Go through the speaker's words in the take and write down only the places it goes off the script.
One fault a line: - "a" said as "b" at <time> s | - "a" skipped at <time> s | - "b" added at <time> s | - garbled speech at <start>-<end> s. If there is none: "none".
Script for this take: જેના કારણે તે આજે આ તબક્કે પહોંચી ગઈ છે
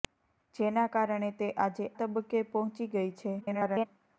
- "આ" skipped at 1.9 s
- garbled speech at 3.4-3.9 s